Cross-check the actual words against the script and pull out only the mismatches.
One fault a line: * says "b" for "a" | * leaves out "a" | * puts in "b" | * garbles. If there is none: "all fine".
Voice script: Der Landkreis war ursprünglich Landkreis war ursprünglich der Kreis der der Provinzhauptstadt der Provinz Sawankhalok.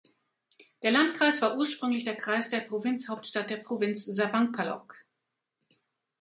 * leaves out "Landkreis war ursprünglich"
* leaves out "der"